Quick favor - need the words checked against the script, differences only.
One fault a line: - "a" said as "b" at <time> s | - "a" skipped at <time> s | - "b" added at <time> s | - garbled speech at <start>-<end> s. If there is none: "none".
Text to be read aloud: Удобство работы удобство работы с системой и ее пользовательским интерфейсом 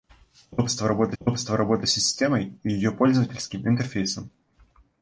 none